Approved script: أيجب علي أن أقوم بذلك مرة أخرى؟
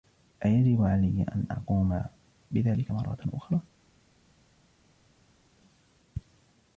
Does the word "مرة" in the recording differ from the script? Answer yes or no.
no